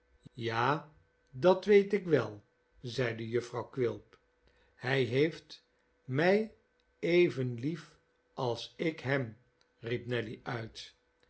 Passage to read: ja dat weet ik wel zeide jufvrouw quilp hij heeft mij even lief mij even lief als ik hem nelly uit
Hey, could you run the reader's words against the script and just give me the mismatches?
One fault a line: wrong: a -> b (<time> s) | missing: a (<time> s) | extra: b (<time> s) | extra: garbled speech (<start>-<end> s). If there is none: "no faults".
missing: mij even lief (8.0 s)
extra: riep (9.8 s)